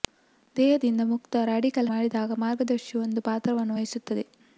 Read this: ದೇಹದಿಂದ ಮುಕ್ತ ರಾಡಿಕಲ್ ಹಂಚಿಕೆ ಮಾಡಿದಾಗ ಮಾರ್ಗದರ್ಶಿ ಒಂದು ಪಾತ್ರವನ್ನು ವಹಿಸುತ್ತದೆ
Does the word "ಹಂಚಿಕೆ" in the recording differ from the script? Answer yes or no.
yes